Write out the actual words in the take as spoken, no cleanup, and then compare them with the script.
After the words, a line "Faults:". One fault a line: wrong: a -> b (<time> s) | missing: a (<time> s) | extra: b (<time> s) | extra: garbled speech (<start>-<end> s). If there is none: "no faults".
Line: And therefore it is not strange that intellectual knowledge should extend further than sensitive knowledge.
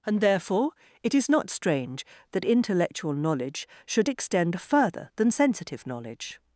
And therefore it is not strange that intellectual knowledge should extend further than sensitive knowledge.
Faults:
no faults